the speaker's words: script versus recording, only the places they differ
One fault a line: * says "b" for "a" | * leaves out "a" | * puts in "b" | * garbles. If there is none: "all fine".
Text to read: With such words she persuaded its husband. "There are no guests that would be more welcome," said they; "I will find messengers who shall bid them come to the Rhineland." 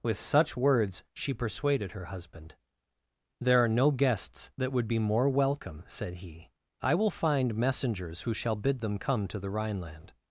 * says "her" for "its"
* says "he" for "they"